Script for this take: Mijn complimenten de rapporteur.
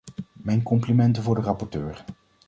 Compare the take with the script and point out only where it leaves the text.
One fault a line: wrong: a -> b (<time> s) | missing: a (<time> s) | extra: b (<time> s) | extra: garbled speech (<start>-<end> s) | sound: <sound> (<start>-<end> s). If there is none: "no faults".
extra: voor (1.2 s)